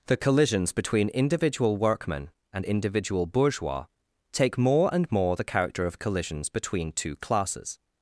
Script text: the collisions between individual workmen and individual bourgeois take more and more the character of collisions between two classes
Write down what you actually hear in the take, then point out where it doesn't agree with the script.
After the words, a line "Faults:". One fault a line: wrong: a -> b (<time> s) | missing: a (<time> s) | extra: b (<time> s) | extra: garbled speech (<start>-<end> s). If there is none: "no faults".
the collisions between individual workmen and individual bourgeois take more and more the character of collisions between two classes
Faults:
no faults